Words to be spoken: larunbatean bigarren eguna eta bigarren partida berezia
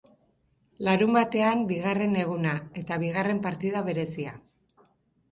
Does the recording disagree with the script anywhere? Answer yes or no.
no